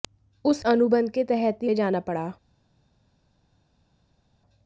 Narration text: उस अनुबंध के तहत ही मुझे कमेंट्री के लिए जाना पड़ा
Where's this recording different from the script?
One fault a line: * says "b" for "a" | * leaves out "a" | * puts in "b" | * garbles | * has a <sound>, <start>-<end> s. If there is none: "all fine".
* leaves out "मुझे कमेंट्री के"